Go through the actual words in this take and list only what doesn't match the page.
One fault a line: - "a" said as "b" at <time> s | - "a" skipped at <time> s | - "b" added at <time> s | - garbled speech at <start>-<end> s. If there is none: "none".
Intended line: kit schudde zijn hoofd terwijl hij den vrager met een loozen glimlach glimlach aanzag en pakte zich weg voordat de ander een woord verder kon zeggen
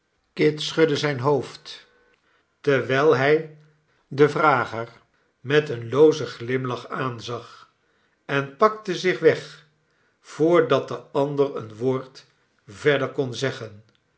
- "glimlach" skipped at 6.9 s